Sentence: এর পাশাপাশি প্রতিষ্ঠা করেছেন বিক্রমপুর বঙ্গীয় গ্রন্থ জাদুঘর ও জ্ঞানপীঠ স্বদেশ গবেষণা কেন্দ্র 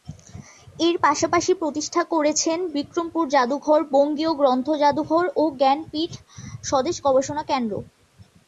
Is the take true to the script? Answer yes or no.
no